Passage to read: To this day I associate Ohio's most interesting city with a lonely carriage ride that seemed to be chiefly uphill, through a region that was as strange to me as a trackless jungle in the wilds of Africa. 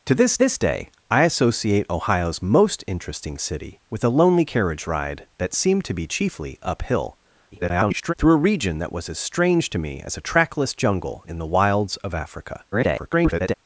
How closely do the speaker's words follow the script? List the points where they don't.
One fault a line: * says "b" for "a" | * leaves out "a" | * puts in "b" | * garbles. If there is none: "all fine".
* puts in "this"
* garbles
* garbles